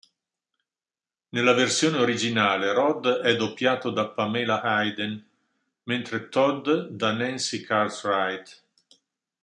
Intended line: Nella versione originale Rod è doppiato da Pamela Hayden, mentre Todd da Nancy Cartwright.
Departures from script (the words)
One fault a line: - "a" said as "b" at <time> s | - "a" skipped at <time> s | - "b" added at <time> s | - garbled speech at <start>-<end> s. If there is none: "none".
none